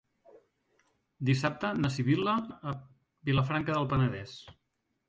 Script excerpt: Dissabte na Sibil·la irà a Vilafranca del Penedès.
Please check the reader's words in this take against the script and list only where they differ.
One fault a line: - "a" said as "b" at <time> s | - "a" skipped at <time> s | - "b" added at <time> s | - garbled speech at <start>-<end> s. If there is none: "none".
- "irà" skipped at 2.4 s